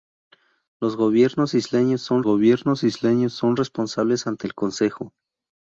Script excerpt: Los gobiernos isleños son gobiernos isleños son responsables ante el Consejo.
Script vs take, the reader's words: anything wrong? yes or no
no